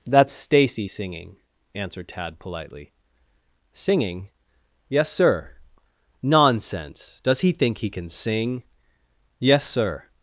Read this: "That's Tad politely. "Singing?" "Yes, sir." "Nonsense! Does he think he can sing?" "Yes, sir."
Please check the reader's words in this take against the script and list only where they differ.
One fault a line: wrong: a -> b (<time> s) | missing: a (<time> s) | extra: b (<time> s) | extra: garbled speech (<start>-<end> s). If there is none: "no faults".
extra: Stacy singing answered (0.3 s)